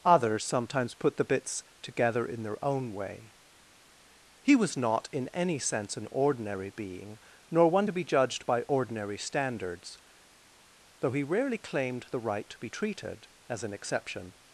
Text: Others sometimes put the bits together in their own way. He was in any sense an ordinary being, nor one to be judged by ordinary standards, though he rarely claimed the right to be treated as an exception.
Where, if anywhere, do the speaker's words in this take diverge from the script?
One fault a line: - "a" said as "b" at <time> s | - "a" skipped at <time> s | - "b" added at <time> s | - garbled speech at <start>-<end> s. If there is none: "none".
- "not" added at 4.8 s